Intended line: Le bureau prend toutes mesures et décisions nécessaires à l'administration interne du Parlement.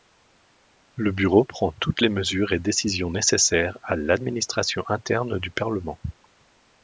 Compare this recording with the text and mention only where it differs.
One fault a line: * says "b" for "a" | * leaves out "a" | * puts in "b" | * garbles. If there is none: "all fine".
* puts in "les"